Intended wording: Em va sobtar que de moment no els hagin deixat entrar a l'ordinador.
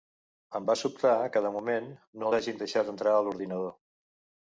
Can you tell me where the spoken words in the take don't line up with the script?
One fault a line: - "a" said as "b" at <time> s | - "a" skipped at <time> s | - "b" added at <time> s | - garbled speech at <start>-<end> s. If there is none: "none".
- "els" skipped at 2.3 s